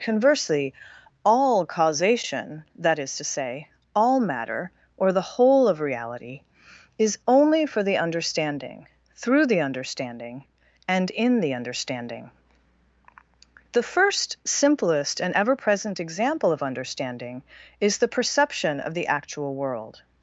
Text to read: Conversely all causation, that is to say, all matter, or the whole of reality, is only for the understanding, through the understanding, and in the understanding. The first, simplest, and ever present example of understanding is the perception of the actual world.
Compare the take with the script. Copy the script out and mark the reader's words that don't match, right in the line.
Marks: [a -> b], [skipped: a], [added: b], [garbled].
Conversely all causation, that is to say, all matter, or the whole of reality, is only for the understanding, through the understanding, and in the understanding. The first, simplest, and ever present example of understanding is the perception of the actual world.